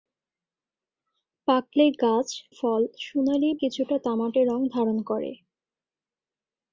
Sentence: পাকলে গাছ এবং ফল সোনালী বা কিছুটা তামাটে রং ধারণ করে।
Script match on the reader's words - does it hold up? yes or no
no